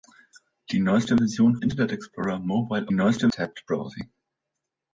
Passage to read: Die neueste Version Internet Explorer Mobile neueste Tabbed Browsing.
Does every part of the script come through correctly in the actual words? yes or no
yes